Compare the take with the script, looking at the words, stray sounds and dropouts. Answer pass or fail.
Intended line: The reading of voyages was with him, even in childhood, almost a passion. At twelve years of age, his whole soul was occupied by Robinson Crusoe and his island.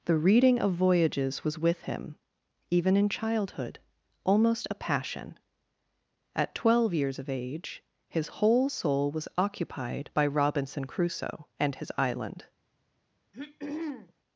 fail